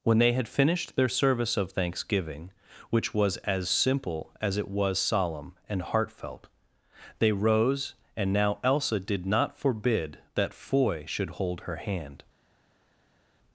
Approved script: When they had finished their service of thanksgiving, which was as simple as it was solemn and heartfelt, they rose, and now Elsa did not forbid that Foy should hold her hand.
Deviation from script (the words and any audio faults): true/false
false